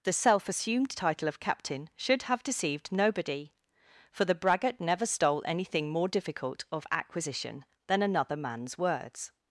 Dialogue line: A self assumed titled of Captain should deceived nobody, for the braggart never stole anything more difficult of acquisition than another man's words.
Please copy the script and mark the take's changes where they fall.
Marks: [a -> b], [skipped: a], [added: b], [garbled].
[A -> The] self assumed [titled -> title] of Captain should [added: have] deceived nobody, for the braggart never stole anything more difficult of acquisition than another man's words.